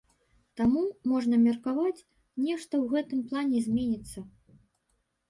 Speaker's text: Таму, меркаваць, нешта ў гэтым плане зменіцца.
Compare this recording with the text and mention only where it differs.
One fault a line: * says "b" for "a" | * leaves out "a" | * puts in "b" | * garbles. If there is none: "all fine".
* puts in "можна"